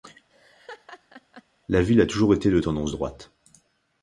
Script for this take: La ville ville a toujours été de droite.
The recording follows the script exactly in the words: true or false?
false